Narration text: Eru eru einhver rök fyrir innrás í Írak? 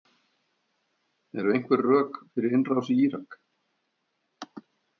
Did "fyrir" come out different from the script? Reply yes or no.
no